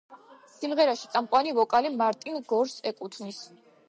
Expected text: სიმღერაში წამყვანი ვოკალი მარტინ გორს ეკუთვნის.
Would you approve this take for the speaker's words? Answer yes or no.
yes